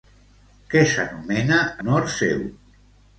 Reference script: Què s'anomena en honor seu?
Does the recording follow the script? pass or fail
fail